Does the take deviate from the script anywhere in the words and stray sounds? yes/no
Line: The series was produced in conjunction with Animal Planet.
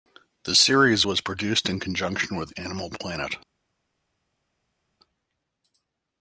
no